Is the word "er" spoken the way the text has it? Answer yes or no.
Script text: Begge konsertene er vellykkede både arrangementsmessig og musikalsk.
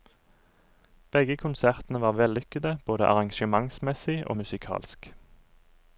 no